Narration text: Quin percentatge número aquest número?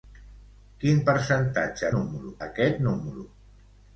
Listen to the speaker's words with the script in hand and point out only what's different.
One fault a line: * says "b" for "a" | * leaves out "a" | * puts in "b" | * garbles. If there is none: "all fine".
all fine